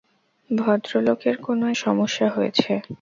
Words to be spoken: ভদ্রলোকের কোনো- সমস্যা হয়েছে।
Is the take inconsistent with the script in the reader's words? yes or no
no